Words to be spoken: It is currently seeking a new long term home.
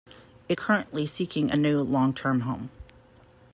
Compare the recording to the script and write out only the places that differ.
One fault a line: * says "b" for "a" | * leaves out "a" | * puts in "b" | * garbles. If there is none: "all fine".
* leaves out "is"